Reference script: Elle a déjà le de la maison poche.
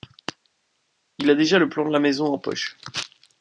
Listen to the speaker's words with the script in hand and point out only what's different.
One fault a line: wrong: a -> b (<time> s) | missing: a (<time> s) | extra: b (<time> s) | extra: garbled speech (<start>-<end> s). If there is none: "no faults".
wrong: Elle -> Il (1.2 s)
extra: plan (1.7 s)
extra: en (2.2 s)